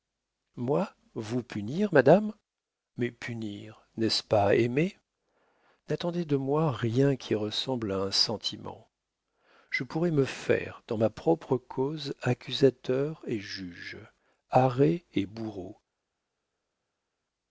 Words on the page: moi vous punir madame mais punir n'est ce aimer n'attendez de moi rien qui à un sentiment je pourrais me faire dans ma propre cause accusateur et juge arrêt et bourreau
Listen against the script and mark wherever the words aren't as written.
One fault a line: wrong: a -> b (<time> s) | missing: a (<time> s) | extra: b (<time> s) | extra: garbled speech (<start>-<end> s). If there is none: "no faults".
extra: pas (4.2 s)
extra: ressemble (7.3 s)